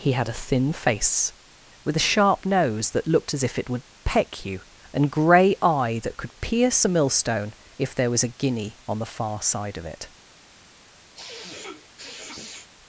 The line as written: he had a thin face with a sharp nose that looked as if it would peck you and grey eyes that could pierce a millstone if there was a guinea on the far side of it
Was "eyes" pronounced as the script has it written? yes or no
no